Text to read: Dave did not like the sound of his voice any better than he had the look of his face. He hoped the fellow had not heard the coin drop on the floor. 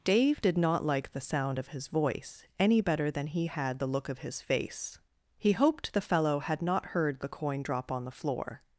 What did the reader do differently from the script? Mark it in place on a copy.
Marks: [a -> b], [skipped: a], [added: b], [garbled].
Dave did not like the sound of his voice any better than he had the look of his face. He hoped the fellow had not heard the coin drop on the floor.